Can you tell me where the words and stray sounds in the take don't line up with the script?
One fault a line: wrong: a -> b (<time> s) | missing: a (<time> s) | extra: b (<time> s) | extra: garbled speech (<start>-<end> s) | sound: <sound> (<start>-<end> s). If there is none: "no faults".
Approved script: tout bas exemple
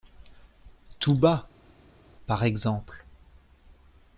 extra: par (2.3 s)